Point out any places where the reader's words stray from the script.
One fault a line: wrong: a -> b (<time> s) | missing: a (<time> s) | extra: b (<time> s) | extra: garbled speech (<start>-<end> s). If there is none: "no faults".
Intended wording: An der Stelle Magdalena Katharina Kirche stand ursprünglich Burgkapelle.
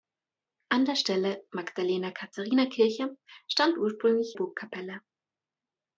no faults